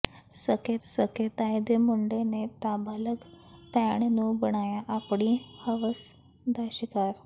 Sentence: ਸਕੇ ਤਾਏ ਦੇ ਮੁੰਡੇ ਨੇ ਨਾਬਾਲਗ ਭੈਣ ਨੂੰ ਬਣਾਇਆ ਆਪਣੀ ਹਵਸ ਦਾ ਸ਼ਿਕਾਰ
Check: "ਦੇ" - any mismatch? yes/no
no